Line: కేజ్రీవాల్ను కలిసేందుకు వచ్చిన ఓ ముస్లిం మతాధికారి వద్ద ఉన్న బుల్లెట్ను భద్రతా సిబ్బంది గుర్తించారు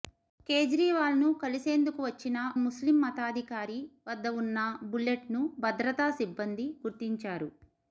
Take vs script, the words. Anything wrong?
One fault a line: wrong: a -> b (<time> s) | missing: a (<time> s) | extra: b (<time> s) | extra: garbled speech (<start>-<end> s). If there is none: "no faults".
missing: ఓ (2.4 s)